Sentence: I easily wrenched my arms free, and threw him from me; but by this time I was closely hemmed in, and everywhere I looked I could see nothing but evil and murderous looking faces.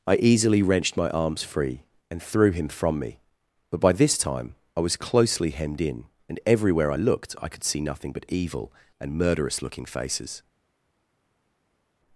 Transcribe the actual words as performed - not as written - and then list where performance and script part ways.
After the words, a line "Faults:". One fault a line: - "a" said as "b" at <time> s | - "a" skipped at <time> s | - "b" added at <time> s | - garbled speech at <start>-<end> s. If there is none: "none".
I easily wrenched my arms free, and threw him from me; but by this time I was closely hemmed in, and everywhere I looked I could see nothing but evil and murderous looking faces.
Faults:
none